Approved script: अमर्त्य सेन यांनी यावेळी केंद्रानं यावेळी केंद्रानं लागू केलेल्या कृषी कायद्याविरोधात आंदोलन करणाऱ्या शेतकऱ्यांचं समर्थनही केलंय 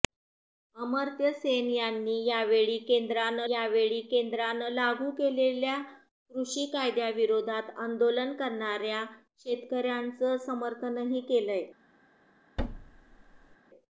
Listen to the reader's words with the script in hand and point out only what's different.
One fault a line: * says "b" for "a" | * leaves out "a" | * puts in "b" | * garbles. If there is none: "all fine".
all fine